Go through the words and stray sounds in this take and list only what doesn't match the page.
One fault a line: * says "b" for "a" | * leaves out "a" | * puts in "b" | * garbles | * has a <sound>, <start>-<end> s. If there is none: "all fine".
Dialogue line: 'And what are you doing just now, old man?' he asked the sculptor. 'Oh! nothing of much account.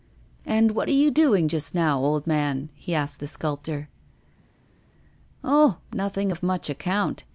all fine